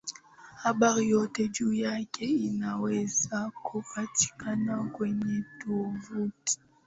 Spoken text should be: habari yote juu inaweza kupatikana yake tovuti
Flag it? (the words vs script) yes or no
yes